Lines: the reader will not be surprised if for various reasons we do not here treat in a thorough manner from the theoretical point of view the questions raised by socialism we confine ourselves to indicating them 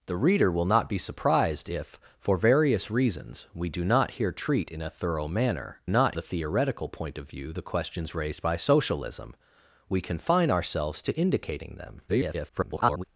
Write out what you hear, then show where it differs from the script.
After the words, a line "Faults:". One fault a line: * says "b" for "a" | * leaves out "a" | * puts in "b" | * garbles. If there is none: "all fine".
the reader will not be surprised if for various reasons we do not here treat in a thorough manner not the theoretical point of view the questions raised by socialism we confine ourselves to indicating them [garbled]
Faults:
* says "not" for "from"
* garbles